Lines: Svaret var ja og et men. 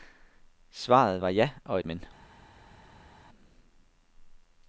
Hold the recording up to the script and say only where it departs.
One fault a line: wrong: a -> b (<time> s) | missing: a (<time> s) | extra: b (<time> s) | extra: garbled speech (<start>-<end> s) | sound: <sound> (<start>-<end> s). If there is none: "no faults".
no faults